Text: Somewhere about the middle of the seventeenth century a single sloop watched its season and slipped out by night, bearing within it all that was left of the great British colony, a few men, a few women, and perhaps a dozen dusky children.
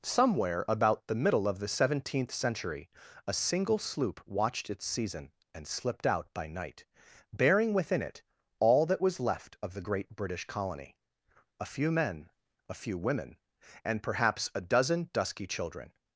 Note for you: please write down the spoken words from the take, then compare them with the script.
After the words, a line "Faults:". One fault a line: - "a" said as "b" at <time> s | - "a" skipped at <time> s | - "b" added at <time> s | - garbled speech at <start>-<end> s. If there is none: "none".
Somewhere about the middle of the seventeenth century a single sloop watched its season and slipped out by night, bearing within it all that was left of the great British colony, a few men, a few women, and perhaps a dozen dusky children.
Faults:
none